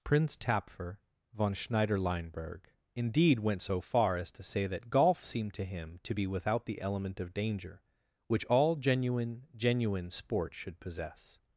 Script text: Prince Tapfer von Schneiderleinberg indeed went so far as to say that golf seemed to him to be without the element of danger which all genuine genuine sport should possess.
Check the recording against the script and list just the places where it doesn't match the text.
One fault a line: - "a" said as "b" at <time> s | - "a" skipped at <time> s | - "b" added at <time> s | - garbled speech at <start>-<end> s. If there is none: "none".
none